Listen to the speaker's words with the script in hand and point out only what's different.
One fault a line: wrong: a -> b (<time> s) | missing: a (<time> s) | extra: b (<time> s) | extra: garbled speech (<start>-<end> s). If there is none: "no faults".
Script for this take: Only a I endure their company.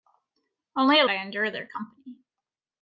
no faults